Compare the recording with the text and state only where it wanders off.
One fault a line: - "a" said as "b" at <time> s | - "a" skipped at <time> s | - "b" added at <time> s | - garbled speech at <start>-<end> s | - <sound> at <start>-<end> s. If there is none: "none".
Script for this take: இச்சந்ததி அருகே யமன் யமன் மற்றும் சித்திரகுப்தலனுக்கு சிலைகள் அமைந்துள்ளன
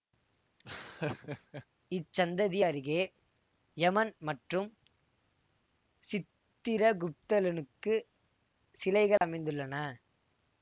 - laugh at 0.6-1.7 s
- "யமன்" skipped at 4.1 s
- dropout at 9.2-9.2 s